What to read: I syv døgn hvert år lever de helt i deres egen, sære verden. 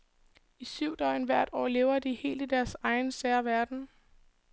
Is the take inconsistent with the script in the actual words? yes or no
no